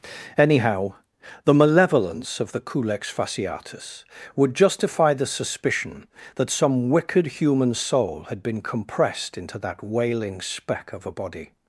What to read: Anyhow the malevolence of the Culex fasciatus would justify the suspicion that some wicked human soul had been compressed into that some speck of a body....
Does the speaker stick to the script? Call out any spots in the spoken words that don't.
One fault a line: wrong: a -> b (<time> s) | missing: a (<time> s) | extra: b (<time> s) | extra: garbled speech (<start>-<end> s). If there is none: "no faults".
wrong: some -> wailing (9.8 s)